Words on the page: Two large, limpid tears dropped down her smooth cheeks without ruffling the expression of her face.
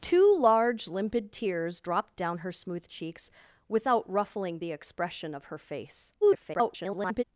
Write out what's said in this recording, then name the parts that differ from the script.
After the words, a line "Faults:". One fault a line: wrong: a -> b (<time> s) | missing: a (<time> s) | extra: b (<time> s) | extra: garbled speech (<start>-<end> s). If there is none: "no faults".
Two large, limpid tears dropped down her smooth cheeks without ruffling the expression of her face. [garbled]
Faults:
extra: garbled speech (6.2-7.2 s)